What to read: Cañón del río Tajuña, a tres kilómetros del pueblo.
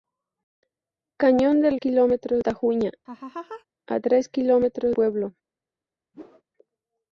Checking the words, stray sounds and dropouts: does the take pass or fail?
fail